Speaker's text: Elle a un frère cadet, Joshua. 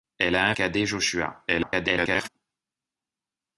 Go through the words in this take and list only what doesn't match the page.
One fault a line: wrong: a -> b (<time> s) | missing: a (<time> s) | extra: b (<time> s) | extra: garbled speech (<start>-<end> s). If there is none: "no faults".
missing: frère (0.6 s)
extra: garbled speech (1.5-2.3 s)